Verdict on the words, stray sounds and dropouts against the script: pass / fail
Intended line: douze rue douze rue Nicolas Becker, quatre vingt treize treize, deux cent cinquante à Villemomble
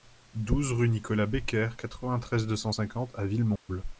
fail